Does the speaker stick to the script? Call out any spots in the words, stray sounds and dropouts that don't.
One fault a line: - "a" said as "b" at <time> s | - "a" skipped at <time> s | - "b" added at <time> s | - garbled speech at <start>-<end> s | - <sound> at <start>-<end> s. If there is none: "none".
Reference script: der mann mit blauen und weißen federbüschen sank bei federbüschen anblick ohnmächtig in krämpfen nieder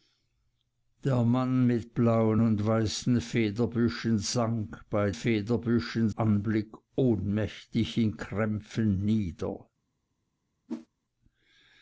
- whoosh at 10.7-10.9 s